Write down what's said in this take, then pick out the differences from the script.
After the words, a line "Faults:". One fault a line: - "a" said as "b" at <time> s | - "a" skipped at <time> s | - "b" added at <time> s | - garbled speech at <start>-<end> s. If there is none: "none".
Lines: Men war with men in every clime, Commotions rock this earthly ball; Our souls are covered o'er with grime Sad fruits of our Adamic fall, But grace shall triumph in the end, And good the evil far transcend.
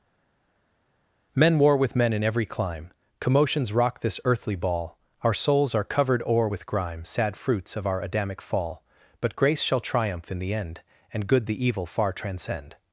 Men war with men in every clime, Commotions rock this earthly ball; Our souls are covered o'er with grime Sad fruits of our Adamic fall, But grace shall triumph in the end, And good the evil far transcend.
Faults:
none